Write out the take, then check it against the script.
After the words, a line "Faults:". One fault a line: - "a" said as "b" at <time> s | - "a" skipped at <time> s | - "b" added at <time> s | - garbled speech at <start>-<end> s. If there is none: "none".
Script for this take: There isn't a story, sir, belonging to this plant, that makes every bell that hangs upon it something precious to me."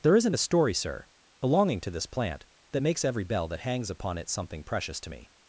There isn't a story, sir, belonging to this plant, that makes every bell that hangs upon it something precious to me."
Faults:
none